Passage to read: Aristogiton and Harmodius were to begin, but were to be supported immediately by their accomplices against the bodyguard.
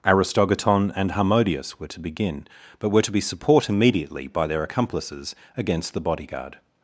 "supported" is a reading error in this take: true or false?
true